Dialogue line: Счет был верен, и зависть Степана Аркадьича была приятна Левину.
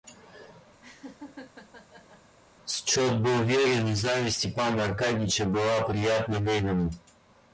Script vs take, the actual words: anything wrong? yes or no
no